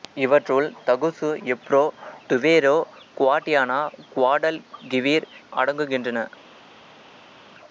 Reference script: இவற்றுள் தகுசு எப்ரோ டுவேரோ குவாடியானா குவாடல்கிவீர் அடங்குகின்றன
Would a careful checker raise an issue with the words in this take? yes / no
no